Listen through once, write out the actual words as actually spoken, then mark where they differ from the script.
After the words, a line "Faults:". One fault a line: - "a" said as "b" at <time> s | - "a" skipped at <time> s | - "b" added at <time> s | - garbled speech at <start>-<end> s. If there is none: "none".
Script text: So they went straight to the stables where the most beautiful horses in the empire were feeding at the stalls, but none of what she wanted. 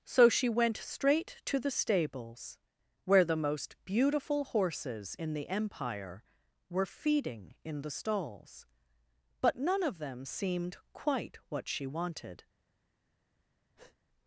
So she went straight to the stables where the most beautiful horses in the empire were feeding in the stalls, but none of them seemed quite what she wanted.
Faults:
- "they" said as "she" at 0.3 s
- "at" said as "in" at 7.6 s
- "them seemed quite" added at 10.0 s